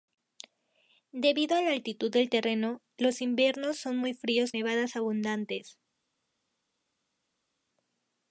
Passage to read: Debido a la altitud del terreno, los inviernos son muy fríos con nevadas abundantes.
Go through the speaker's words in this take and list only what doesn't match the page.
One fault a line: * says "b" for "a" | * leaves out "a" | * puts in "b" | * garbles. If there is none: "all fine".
* leaves out "con"